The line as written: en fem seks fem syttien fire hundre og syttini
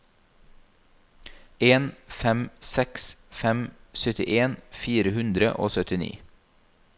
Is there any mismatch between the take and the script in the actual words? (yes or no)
no